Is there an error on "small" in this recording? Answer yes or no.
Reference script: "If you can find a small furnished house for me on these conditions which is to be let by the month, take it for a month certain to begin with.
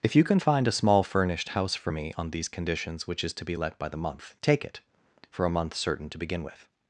no